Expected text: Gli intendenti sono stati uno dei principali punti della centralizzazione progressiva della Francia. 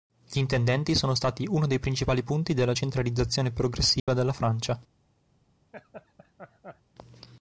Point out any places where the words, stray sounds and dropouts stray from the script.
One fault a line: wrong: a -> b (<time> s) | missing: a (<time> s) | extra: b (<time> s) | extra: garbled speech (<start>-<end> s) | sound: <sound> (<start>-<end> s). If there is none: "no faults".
sound: dropout (4.0-4.1 s)
sound: laugh (5.7-6.8 s)